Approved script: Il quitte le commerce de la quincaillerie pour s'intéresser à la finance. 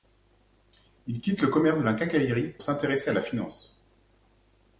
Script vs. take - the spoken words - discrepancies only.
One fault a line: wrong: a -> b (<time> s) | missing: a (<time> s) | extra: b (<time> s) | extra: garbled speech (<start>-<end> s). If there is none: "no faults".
missing: pour (2.5 s)